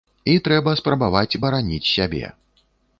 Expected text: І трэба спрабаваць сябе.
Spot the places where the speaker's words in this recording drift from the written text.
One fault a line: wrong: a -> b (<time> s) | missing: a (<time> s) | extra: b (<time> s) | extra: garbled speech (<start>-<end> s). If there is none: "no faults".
extra: бараніць (1.4 s)